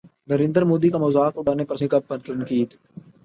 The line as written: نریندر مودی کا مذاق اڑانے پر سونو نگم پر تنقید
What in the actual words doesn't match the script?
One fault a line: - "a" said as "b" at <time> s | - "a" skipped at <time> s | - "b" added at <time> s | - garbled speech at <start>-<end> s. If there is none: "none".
- "سونو" skipped at 1.8 s